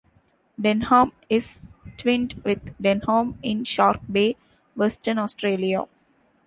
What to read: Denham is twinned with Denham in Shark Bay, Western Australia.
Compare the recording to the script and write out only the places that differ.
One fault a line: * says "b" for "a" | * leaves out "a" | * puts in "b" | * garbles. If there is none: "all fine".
all fine